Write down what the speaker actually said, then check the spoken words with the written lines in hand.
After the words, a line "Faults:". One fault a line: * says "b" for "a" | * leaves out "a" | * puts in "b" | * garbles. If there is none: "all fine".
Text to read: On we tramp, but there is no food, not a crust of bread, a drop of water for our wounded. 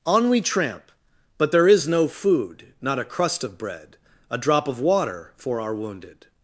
On we tramp, but there is no food, not a crust of bread, a drop of water for our wounded.
Faults:
all fine